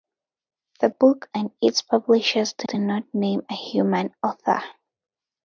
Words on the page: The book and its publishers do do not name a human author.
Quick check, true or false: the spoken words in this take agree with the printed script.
true